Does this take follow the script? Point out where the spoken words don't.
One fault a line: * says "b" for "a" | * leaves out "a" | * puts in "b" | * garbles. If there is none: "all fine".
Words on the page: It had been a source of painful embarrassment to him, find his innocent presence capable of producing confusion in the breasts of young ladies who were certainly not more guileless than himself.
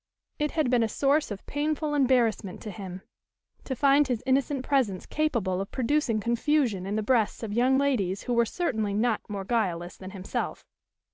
* puts in "to"